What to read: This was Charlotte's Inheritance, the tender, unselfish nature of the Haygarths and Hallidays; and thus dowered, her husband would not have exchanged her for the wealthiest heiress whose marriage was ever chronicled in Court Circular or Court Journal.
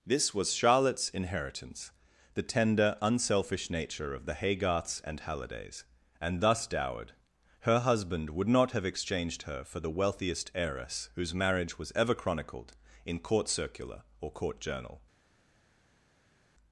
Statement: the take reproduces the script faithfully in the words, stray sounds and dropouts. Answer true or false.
true